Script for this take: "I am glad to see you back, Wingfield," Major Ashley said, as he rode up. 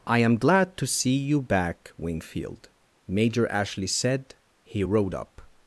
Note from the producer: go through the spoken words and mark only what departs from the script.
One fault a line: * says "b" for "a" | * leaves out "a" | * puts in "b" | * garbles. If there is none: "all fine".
* leaves out "as"